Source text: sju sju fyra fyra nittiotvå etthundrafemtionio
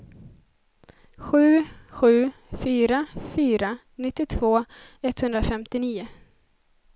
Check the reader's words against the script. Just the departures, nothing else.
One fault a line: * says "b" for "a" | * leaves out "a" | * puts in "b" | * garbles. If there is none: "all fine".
all fine